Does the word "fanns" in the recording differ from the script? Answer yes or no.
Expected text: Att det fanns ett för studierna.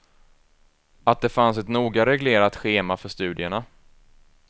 no